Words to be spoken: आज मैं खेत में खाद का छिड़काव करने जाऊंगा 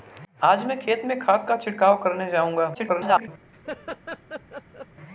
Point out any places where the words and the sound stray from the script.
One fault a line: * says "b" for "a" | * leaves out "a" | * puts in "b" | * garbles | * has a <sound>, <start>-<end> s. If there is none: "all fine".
* garbles
* has a laugh, 3.5-4.9 s